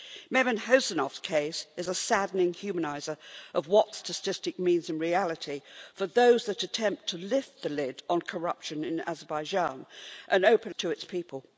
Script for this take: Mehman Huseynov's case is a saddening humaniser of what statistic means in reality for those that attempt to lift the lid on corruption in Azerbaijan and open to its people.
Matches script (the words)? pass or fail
pass